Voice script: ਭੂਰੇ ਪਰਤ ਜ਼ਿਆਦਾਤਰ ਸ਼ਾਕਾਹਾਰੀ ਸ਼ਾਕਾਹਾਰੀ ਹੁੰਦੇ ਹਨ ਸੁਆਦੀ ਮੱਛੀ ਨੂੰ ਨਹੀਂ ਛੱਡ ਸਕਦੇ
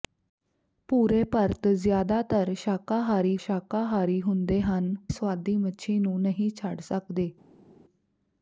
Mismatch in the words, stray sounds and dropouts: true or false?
false